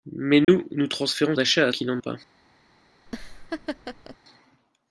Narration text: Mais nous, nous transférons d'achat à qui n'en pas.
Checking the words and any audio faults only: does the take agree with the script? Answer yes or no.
no